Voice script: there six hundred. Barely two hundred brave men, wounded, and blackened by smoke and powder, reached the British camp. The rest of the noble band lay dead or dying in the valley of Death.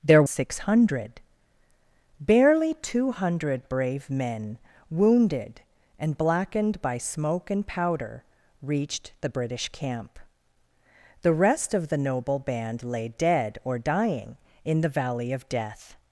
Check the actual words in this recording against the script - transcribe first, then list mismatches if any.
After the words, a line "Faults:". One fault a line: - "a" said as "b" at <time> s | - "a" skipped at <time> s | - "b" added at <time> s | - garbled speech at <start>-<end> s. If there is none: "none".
there six hundred. Barely two hundred brave men, wounded, and blackened by smoke and powder, reached the British camp. The rest of the noble band lay dead or dying in the valley of Death.
Faults:
none